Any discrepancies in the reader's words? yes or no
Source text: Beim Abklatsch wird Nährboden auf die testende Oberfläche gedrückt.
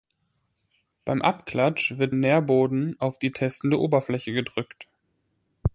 no